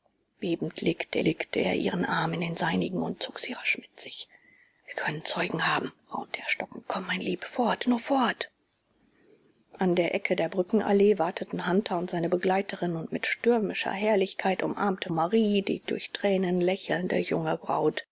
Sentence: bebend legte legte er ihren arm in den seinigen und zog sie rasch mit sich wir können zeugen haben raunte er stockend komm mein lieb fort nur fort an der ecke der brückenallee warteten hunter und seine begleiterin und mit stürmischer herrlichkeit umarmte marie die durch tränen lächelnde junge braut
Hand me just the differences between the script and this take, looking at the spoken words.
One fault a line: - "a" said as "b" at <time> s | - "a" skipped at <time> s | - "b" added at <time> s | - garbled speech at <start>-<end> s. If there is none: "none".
none